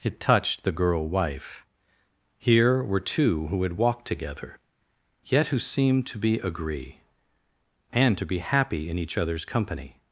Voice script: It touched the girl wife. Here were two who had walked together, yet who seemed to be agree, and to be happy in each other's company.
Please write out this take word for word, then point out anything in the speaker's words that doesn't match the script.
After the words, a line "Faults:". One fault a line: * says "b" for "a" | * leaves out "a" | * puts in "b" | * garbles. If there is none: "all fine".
It touched the girl wife. Here were two who had walked together, yet who seemed to be agree, and to be happy in each other's company.
Faults:
all fine